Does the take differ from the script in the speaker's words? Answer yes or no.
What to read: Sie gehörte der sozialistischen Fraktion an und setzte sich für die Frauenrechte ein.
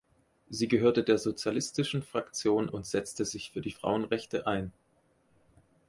yes